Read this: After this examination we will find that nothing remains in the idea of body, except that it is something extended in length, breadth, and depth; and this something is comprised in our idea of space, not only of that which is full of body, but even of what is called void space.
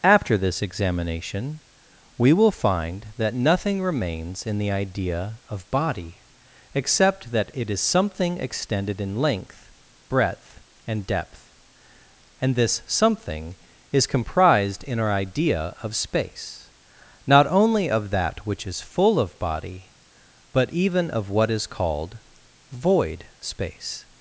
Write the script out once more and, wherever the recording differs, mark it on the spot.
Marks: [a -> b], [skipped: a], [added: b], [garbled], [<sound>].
After this examination we will find that nothing remains in the idea of body, except that it is something extended in length, breadth, and depth; and this something is comprised in our idea of space, not only of that which is full of body, but even of what is called void space.